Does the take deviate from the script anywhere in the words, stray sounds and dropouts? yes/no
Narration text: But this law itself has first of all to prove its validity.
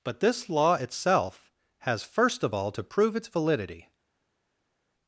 no